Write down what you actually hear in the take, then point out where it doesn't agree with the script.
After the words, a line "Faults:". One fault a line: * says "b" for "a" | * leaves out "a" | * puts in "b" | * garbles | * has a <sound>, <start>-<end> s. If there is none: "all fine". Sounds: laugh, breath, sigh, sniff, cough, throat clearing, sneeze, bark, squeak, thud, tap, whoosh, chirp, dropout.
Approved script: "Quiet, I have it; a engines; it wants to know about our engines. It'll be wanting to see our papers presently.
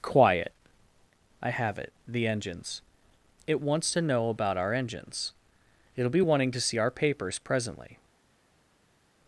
"Quiet, I have it; the engines; it wants to know about our engines. It'll be wanting to see our papers presently.
Faults:
* says "the" for "a"